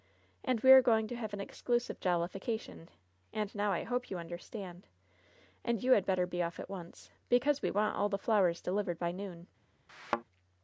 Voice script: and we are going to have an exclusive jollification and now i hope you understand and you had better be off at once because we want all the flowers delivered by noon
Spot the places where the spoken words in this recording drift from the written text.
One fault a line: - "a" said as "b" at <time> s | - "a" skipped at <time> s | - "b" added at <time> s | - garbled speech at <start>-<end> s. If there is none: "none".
none